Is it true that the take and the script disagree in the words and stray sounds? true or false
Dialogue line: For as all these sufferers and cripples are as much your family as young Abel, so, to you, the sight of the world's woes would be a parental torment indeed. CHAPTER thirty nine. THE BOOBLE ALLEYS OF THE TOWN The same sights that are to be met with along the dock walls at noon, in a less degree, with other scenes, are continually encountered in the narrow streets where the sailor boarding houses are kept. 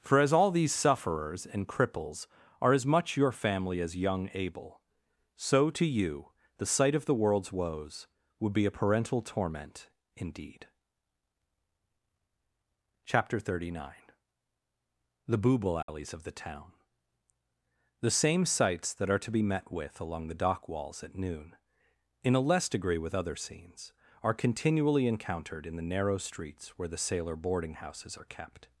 true